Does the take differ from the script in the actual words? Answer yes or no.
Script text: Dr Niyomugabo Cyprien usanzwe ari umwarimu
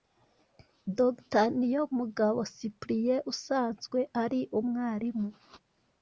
no